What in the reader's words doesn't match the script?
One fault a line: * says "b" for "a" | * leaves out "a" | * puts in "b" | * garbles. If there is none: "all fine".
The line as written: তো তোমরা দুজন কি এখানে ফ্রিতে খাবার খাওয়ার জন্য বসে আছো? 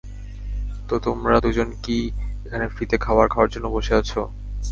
all fine